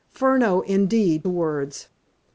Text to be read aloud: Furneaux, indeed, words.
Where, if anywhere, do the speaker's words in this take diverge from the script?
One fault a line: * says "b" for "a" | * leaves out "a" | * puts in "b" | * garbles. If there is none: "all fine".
all fine